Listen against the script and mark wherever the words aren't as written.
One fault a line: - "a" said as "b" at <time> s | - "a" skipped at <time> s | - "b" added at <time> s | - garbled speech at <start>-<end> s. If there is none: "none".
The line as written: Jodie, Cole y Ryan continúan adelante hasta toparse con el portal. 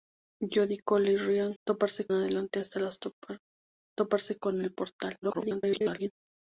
- "continúan" said as "toparse" at 1.6 s
- garbled speech at 5.2-6.1 s